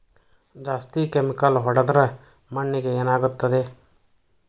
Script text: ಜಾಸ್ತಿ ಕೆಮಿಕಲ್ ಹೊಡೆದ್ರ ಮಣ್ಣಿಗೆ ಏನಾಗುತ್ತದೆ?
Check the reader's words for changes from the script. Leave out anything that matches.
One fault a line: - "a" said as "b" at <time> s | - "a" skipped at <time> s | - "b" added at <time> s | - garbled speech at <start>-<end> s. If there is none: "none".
none